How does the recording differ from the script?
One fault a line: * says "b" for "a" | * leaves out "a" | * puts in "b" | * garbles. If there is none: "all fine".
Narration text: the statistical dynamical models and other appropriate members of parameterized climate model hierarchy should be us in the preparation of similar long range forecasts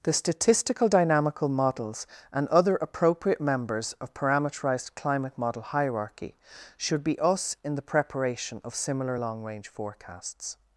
all fine